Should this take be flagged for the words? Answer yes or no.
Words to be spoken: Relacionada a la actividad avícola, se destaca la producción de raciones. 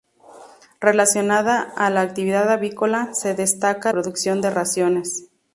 yes